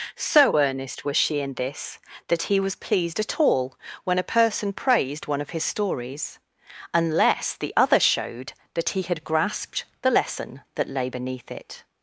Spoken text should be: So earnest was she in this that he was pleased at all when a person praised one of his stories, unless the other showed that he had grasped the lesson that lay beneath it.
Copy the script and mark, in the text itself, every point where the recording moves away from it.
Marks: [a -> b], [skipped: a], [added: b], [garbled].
So earnest was she in this that he was pleased at all when a person praised one of his stories, unless the other showed that he had grasped the lesson that lay beneath it.